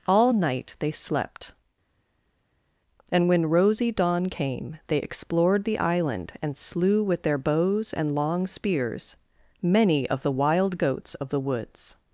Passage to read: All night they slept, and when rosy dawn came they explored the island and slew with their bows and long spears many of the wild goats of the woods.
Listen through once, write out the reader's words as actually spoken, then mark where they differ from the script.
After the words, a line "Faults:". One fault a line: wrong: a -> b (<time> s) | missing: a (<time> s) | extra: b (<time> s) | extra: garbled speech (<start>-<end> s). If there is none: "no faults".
All night they slept, and when rosy dawn came they explored the island and slew with their bows and long spears many of the wild goats of the woods.
Faults:
no faults